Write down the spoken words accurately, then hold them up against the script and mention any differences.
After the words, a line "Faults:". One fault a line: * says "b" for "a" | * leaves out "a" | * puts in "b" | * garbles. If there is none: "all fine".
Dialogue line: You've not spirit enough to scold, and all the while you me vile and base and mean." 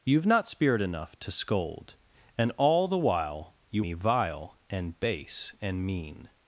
You've not spirit enough to scold, and all the while you me vile and base and mean."
Faults:
all fine